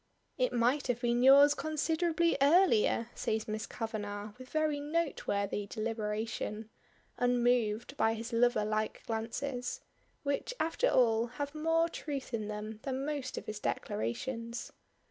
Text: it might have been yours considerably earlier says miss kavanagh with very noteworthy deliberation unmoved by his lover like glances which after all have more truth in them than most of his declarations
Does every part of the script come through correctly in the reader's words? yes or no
yes